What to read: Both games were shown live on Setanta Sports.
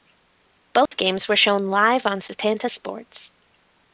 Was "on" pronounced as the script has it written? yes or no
yes